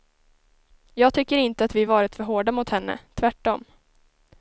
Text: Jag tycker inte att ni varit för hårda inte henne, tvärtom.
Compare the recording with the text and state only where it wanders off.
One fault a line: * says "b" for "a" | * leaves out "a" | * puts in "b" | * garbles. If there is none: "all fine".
* says "vi" for "ni"
* says "mot" for "inte"